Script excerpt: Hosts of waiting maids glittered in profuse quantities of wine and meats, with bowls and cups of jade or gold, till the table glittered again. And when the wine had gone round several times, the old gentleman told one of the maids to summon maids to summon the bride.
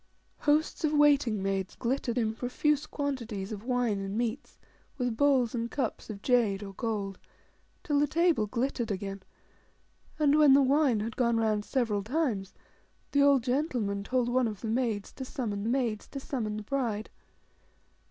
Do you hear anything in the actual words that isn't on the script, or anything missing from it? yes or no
no